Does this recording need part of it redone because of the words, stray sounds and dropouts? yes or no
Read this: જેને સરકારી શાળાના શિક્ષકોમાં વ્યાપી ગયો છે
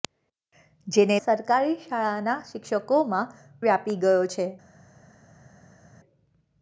no